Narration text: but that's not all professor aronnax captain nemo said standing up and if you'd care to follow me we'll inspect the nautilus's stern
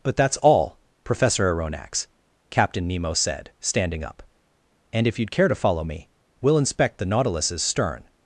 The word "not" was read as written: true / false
false